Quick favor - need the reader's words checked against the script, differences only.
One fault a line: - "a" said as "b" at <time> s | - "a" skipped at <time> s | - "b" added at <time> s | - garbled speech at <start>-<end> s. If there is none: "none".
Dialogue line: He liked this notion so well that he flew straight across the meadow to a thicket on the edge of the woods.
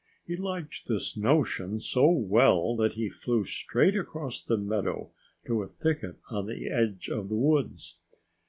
none